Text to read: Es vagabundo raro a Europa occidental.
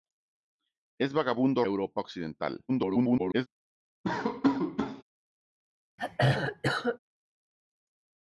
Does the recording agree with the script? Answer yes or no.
no